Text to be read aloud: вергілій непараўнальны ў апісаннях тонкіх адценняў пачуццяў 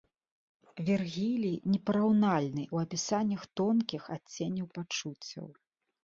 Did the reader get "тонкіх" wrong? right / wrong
right